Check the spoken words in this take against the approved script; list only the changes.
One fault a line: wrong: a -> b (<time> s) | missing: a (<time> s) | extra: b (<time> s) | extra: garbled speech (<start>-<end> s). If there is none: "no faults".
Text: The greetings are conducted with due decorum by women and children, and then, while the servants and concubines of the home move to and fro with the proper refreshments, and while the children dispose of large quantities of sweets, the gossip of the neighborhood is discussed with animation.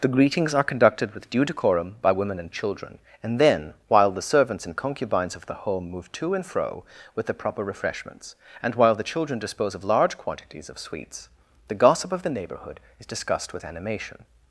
no faults